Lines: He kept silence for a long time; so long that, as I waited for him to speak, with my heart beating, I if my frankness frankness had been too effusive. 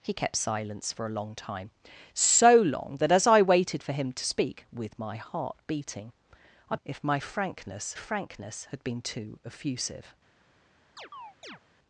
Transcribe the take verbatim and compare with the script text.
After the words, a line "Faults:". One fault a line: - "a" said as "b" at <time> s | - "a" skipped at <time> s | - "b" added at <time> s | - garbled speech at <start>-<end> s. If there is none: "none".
He kept silence for a long time; so long that, as I waited for him to speak, with my heart beating, I if my frankness frankness had been too effusive.
Faults:
none